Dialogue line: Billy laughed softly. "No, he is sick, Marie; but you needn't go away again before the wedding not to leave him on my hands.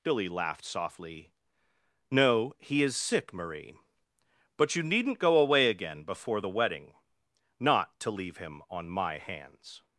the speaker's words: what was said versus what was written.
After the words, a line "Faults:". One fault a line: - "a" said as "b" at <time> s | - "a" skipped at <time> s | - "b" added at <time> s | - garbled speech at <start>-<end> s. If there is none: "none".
Billy laughed softly. "No, he is sick, Marie; but you needn't go away again before the wedding not to leave him on my hands.
Faults:
none